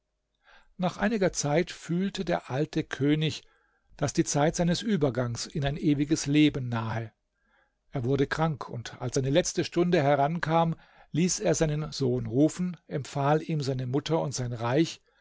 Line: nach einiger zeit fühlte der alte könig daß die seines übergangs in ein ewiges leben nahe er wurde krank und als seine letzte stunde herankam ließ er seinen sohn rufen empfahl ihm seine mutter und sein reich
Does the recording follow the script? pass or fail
fail